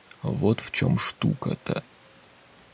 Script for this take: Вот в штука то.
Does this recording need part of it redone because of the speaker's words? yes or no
yes